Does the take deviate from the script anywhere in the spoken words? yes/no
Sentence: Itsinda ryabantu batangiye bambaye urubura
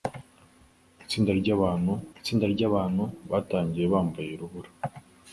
yes